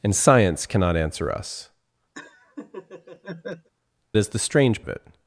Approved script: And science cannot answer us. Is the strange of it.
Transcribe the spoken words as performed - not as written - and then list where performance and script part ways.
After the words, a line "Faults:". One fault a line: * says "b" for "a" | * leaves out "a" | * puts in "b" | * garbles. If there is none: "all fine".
And science cannot answer us. Is the strange of it.
Faults:
all fine